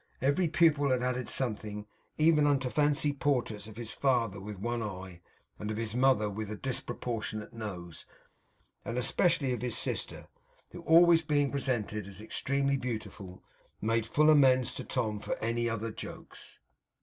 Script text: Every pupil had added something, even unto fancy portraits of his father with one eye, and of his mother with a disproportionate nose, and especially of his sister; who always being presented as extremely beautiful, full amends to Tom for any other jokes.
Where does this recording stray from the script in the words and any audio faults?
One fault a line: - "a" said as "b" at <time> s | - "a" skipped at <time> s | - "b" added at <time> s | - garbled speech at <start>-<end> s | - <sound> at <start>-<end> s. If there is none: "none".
- "made" added at 13.8 s